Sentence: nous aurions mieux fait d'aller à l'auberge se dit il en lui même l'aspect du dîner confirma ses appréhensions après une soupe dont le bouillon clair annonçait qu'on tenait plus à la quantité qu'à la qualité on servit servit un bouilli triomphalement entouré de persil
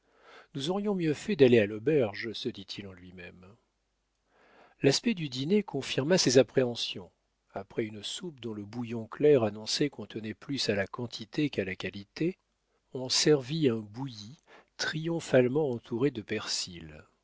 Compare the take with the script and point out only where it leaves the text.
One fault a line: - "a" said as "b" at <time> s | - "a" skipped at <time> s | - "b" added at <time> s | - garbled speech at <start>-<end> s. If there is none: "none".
- "servit" skipped at 13.7 s